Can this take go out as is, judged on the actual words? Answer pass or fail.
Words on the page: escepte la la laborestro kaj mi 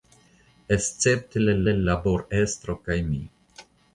pass